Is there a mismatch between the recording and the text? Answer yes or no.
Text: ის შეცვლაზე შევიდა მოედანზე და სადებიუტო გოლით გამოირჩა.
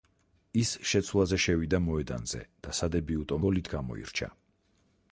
no